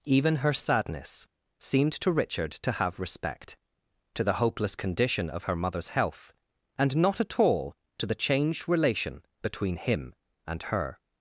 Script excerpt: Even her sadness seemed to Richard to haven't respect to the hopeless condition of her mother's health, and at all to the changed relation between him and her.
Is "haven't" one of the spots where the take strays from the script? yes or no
yes